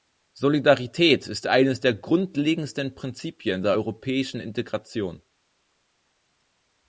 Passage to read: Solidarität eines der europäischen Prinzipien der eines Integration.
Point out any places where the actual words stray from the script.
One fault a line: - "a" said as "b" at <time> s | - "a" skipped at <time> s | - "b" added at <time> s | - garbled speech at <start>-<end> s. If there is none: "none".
- "ist" added at 1.3 s
- "europäischen" said as "grundlegendsten" at 1.9 s
- "eines" said as "europäischen" at 3.7 s